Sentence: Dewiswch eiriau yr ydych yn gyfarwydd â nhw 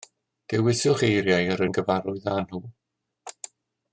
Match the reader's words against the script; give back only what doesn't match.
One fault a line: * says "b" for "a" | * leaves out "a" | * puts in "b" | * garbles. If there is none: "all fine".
* leaves out "ydych"